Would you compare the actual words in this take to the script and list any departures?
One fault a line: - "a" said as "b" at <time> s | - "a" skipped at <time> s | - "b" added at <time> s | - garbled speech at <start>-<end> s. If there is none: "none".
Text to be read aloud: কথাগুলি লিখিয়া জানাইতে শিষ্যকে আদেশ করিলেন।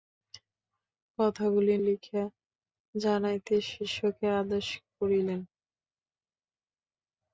none